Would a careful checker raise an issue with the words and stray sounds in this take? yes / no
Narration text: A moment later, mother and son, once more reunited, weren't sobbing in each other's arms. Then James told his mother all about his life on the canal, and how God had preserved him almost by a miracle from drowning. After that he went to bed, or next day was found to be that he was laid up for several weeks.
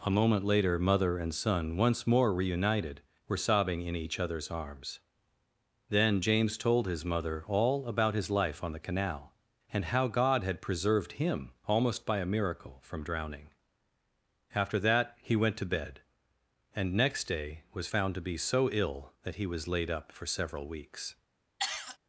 yes